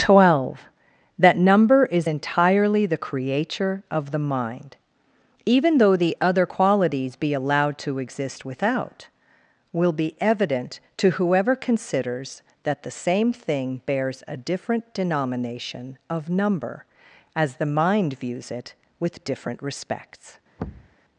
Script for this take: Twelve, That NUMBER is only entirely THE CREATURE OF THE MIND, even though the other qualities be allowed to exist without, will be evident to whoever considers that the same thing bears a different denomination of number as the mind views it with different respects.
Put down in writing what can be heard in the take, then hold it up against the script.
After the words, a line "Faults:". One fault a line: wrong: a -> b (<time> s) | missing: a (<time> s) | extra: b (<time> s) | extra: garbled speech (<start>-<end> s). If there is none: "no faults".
Twelve, That NUMBER is entirely THE CREATURE OF THE MIND, even though the other qualities be allowed to exist without, will be evident to whoever considers that the same thing bears a different denomination of number as the mind views it with different respects.
Faults:
missing: only (2.1 s)